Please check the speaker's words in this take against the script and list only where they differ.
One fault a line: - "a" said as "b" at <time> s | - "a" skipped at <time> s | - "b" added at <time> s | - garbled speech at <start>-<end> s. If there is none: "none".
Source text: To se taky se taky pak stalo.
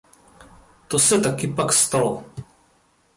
- "se taky" skipped at 1.5 s